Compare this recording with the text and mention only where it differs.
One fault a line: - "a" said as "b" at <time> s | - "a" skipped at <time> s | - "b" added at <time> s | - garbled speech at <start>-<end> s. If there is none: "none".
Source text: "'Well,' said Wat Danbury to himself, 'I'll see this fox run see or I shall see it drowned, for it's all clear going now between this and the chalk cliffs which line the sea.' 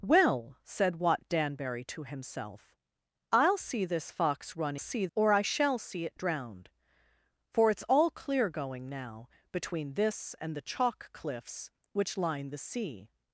none